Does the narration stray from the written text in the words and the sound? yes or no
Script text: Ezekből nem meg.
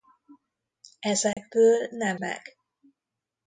yes